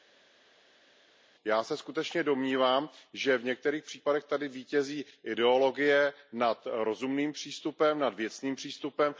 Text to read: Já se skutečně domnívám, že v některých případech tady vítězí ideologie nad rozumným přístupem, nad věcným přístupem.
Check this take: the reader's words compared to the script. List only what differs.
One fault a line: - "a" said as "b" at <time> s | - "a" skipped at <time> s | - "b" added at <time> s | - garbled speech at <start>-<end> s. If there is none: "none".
none